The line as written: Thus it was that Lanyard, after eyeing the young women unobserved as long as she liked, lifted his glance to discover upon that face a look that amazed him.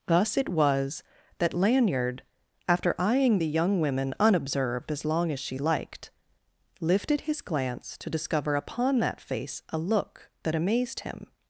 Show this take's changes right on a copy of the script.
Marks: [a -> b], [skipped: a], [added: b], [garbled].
Thus it was that Lanyard, after eyeing the young women unobserved as long as she liked, lifted his glance to discover upon that face a look that amazed him.